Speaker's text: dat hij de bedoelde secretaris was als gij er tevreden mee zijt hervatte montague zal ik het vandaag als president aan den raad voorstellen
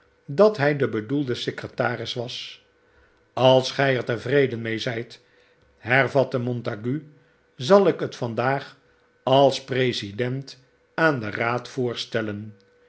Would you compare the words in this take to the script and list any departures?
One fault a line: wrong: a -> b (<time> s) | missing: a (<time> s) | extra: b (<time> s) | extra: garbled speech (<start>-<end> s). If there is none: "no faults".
no faults